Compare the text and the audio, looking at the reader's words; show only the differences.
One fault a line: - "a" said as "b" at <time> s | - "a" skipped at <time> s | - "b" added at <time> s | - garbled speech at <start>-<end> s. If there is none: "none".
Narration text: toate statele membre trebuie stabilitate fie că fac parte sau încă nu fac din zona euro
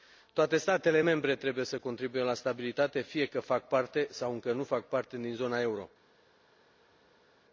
- "să contribuie la" added at 1.6 s
- "parte" added at 4.9 s